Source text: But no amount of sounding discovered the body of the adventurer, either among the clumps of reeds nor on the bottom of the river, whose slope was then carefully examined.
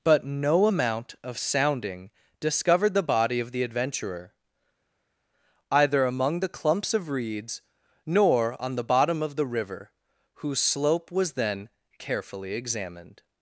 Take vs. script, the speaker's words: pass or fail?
pass